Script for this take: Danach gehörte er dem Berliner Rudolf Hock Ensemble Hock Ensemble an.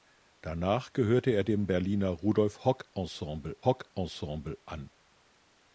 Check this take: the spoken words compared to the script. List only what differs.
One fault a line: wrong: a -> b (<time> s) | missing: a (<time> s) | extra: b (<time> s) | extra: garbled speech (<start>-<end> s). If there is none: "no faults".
no faults